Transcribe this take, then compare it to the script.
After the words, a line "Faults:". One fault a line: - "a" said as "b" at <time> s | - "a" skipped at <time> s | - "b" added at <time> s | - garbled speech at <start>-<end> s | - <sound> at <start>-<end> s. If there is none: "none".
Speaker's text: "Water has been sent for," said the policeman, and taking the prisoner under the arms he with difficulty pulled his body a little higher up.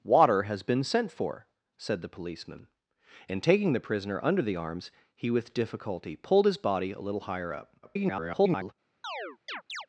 "Water has been sent for," said the policeman, and taking the prisoner under the arms he with difficulty pulled his body a little higher up. [garbled]
Faults:
- garbled speech at 7.8-8.7 s
- chirp at 9.0-9.9 s